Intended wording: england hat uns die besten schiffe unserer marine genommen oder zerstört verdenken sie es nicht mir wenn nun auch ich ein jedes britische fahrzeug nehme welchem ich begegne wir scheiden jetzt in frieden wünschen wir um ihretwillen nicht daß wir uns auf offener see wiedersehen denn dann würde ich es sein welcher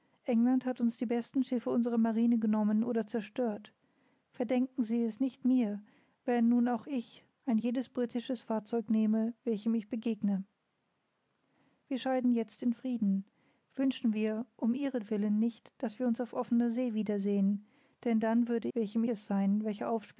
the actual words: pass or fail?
fail